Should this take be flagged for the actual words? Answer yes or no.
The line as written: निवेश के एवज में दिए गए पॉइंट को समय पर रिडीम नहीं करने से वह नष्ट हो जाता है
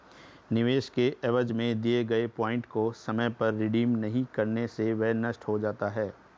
no